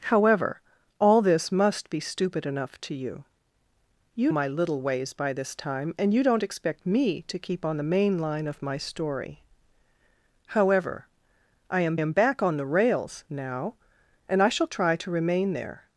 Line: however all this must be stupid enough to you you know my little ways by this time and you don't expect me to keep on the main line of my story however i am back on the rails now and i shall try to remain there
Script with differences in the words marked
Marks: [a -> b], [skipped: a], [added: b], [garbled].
however all this must be stupid enough to you you [skipped: know] my little ways by this time and you don't expect me to keep on the main line of my story however i am [added: am] back on the rails now and i shall try to remain there